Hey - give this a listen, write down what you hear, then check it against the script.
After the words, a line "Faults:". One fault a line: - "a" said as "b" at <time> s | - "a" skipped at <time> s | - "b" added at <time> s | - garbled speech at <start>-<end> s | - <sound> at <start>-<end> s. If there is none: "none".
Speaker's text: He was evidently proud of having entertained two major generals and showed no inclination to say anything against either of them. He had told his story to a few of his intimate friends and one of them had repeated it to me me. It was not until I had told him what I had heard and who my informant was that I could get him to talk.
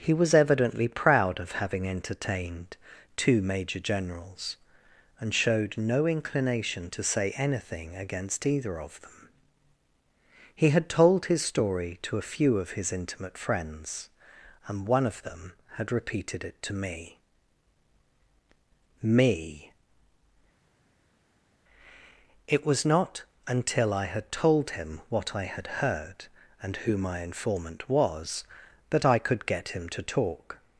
He was evidently proud of having entertained two major generals and showed no inclination to say anything against either of them. He had told his story to a few of his intimate friends and one of them had repeated it to me me. It was not until I had told him what I had heard and who my informant was that I could get him to talk.
Faults:
none